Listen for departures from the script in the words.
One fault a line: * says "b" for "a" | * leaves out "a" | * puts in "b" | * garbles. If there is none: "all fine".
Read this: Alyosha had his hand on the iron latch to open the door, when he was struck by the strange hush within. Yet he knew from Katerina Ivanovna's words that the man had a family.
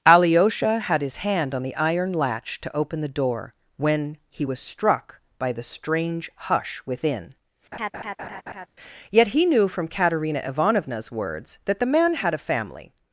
all fine